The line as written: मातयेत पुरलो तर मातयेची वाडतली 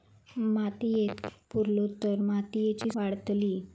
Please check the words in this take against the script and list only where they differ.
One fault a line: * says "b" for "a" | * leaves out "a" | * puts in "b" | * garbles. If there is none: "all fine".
all fine